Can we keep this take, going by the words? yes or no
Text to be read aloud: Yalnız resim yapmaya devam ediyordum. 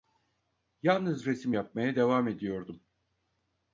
yes